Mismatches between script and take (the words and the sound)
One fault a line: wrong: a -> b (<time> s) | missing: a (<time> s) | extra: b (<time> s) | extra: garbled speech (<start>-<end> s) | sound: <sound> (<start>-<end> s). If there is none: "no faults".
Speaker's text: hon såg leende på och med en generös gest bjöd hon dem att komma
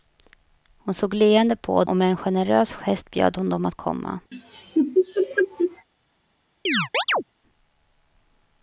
sound: laugh (4.3-5.9 s)
sound: chirp (6.7-7.2 s)